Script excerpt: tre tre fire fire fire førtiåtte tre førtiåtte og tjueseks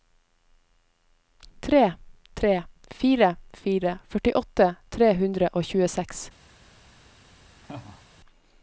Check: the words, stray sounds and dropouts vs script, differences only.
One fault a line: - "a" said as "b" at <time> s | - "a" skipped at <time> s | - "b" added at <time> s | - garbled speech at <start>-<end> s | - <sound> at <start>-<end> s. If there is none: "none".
- "fire" skipped at 4.0 s
- "førtiåtte" said as "hundre" at 5.2 s
- laugh at 7.6-8.0 s